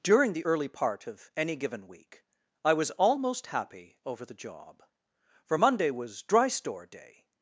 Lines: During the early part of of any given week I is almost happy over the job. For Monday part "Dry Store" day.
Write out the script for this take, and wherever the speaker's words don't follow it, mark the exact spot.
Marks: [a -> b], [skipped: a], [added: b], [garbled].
During the early part of [skipped: of] any given week I [is -> was] almost happy over the job. For Monday [part -> was] "Dry Store" day.